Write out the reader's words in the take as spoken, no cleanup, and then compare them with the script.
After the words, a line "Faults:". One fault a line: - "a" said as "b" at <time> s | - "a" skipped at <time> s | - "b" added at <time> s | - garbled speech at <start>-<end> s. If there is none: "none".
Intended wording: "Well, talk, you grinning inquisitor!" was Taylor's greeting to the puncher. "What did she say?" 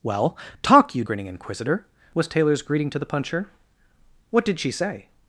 "Well, talk, you grinning inquisitor!" was Taylor's greeting to the puncher. "What did she say?"
Faults:
none